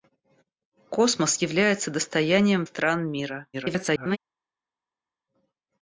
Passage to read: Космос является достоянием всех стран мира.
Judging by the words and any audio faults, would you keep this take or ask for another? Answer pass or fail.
fail